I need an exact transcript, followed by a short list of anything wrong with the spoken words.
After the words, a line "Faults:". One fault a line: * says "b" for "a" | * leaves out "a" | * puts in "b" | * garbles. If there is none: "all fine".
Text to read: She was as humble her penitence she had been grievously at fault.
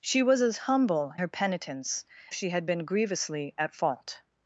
She was as humble her penitence she had been grievously at fault.
Faults:
all fine